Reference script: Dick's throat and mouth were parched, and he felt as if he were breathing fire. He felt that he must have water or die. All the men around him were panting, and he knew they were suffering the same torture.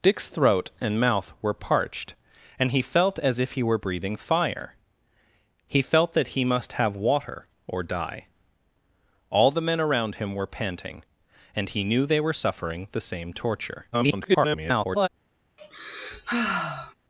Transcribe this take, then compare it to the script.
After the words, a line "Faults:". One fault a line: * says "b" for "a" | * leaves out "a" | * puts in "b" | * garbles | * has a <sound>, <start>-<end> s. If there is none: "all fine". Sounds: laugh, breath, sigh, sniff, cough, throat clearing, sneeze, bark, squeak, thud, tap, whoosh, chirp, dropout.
Dick's throat and mouth were parched, and he felt as if he were breathing fire. He felt that he must have water or die. All the men around him were panting, and he knew they were suffering the same torture. [garbled]
Faults:
* garbles
* has a sigh, 15.6-16.9 s